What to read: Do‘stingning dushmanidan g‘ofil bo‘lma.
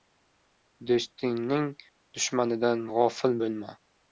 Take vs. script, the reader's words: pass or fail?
pass